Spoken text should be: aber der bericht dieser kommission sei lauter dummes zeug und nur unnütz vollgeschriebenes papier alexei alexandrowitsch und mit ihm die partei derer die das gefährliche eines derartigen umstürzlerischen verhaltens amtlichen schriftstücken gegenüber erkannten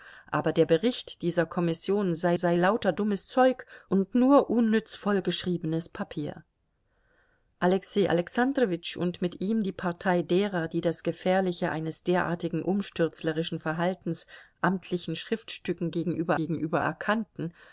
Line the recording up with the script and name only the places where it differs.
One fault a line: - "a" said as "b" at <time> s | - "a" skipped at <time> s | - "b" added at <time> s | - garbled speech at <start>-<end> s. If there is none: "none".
- "sei" added at 2.3 s
- "gegenüber" added at 16.3 s